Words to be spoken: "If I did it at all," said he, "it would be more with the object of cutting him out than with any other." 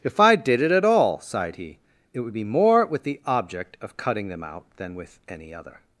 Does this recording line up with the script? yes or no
no